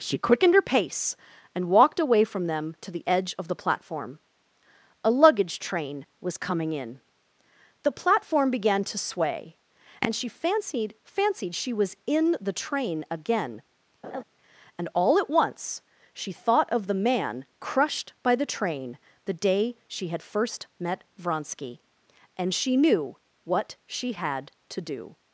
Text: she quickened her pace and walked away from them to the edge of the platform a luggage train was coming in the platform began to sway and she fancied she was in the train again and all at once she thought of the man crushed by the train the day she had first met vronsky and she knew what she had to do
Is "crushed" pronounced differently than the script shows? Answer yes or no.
no